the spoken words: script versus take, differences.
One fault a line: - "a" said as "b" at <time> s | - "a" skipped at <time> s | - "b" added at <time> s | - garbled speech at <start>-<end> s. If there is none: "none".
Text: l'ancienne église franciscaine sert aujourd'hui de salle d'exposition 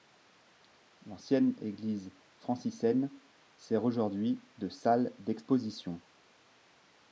none